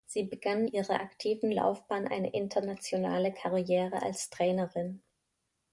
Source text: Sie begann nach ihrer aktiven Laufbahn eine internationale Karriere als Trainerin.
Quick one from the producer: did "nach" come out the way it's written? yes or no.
no